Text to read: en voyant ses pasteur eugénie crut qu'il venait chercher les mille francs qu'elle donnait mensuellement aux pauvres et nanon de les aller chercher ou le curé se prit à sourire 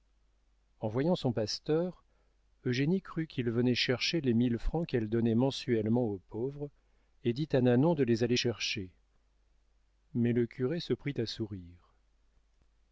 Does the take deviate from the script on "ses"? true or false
true